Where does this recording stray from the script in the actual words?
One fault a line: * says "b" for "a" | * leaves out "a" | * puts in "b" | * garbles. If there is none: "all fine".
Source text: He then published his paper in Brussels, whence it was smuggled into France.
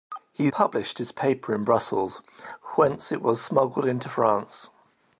* leaves out "then"